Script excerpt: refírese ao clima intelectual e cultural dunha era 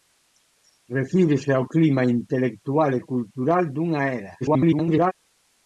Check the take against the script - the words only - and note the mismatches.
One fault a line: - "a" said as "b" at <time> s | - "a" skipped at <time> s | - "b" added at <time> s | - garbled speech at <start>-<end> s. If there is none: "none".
- garbled speech at 4.4-5.1 s